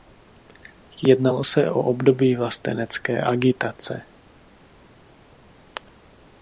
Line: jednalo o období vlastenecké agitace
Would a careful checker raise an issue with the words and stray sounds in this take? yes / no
yes